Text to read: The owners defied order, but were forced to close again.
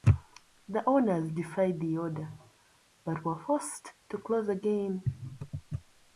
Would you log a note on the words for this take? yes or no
yes